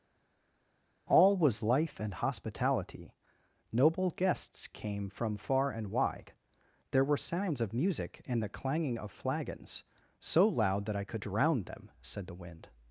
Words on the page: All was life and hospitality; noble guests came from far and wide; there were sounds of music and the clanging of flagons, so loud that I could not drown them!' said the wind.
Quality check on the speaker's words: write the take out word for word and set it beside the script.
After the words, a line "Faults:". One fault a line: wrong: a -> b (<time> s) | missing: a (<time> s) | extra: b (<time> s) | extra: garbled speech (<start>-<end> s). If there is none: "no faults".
All was life and hospitality; noble guests came from far and wide; there were sounds of music and the clanging of flagons, so loud that I could drown them!' said the wind.
Faults:
missing: not (11.2 s)